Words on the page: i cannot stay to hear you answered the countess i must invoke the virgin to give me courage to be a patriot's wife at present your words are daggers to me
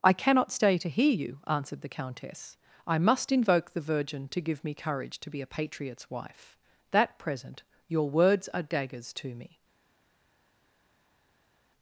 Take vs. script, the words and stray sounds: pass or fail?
fail